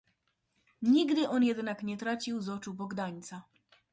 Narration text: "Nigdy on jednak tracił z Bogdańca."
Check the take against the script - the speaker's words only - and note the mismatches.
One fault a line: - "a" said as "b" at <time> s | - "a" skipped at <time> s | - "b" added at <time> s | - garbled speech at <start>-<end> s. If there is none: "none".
- "nie" added at 1.8 s
- "oczu" added at 2.5 s